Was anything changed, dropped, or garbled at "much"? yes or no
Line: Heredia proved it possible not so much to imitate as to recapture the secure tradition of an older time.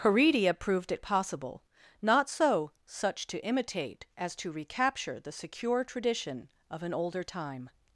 yes